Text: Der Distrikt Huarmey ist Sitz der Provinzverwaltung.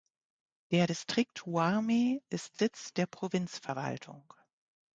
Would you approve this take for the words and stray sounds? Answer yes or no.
yes